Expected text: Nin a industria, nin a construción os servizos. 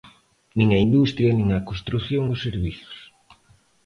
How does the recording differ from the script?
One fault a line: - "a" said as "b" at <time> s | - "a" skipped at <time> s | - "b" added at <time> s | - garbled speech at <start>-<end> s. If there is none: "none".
none